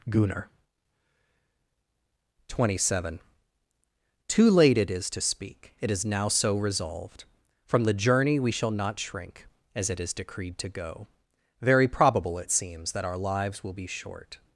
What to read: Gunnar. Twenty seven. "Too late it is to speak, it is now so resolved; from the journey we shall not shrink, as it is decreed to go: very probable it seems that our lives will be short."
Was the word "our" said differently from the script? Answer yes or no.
no